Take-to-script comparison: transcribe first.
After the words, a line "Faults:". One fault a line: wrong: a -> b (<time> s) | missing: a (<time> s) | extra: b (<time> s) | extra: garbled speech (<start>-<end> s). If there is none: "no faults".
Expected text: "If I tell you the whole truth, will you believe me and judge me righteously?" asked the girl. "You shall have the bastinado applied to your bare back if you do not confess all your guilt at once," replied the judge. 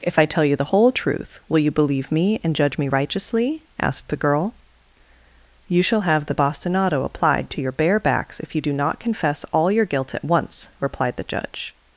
"If I tell you the whole truth, will you believe me and judge me righteously?" asked the girl. "You shall have the bastinado applied to your bare backs if you do not confess all your guilt at once," replied the judge.
Faults:
wrong: back -> backs (8.0 s)